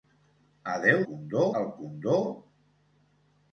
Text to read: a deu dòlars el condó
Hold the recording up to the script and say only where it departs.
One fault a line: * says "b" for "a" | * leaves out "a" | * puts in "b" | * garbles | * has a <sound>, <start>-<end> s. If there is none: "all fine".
* says "condó" for "dòlars"